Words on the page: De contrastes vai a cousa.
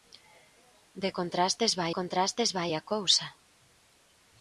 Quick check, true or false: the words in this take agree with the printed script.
false